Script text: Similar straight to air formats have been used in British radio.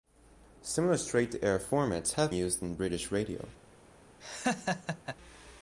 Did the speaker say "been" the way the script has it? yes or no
no